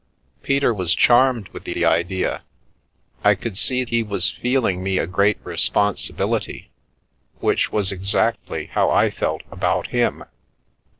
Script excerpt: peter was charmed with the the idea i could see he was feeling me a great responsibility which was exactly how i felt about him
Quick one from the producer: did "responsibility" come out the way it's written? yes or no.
yes